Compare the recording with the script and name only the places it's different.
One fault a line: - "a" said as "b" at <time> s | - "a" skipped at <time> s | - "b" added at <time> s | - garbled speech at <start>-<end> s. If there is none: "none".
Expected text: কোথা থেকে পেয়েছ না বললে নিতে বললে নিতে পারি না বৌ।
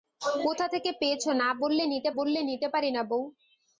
none